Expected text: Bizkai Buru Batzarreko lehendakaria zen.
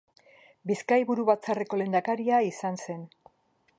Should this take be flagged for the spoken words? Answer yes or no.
yes